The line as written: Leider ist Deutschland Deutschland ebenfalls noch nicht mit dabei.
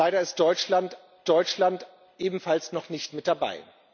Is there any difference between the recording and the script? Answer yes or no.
no